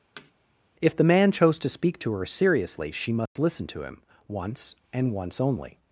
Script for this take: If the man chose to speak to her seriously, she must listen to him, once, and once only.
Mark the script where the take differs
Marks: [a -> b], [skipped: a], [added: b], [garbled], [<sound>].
[thud] If the man chose to speak to her seriously, she must [dropout] listen to him, once, and once only.